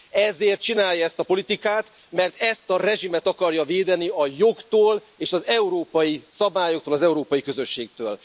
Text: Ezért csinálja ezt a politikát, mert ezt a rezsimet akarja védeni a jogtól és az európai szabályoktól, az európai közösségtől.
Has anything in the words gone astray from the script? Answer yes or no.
no